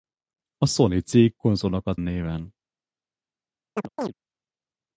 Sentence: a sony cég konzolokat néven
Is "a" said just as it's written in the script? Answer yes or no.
yes